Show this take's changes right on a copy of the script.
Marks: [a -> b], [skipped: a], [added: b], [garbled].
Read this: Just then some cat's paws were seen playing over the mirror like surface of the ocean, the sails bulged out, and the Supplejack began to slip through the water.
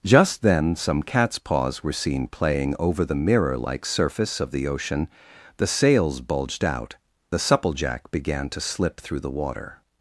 Just then some cat's paws were seen playing over the mirror like surface of the ocean, the sails bulged out, [skipped: and] the Supplejack began to slip through the water.